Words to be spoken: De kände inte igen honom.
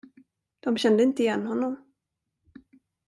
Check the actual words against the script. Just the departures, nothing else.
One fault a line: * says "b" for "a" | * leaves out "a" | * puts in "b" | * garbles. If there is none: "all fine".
all fine